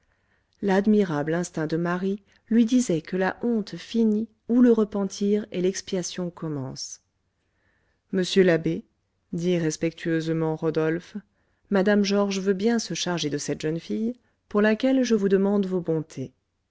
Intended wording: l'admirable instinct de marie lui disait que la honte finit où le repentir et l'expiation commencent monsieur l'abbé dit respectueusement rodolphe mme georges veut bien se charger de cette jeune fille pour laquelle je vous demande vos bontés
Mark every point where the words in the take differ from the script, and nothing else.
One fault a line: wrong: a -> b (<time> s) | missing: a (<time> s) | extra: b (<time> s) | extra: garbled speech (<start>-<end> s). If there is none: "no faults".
no faults